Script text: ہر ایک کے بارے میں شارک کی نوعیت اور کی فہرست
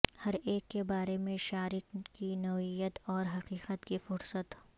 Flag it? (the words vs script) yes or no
yes